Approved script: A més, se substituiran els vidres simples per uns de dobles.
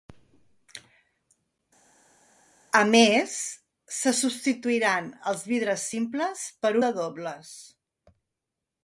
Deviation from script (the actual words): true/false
true